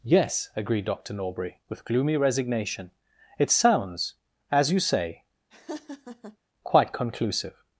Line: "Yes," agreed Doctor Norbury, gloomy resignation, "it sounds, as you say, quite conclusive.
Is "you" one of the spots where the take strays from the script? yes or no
no